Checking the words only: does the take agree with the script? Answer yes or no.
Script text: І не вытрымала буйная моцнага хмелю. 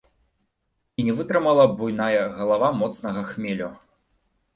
no